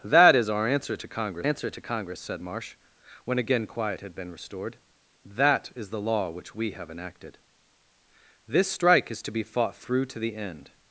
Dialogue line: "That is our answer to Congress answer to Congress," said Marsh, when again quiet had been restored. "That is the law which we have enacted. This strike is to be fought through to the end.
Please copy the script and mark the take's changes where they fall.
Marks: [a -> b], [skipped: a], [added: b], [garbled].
"That is our answer to Congress answer to Congress," said Marsh, when again quiet had been restored. "That is the law which we have enacted. This strike is to be fought through to the end.